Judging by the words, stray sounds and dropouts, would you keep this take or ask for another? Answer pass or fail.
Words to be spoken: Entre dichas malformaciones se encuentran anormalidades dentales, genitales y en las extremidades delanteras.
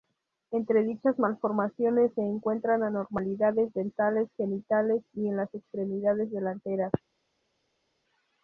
pass